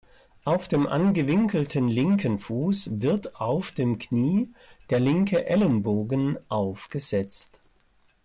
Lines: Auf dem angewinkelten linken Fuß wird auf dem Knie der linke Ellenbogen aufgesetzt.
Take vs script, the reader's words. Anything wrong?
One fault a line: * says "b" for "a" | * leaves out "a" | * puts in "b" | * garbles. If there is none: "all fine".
all fine